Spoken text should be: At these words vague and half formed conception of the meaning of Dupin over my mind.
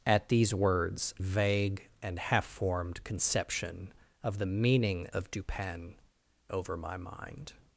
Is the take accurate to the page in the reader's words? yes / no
yes